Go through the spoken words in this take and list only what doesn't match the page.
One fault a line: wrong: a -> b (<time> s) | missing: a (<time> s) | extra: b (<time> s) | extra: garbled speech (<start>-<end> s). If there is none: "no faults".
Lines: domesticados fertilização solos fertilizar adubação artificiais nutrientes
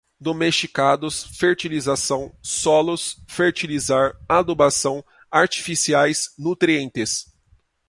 no faults